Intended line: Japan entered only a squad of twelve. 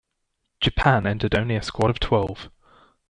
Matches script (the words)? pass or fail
pass